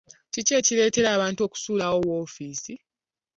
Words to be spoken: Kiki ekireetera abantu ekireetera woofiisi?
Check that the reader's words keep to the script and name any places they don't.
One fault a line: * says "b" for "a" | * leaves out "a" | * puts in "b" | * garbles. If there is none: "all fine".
* says "okusuulawo" for "ekireetera"